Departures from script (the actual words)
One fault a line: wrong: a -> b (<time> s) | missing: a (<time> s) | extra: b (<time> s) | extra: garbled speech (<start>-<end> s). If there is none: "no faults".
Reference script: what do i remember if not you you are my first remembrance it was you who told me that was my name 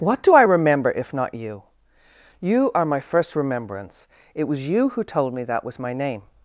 no faults